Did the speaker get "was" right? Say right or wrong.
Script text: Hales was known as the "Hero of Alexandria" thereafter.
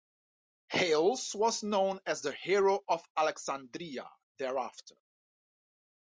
right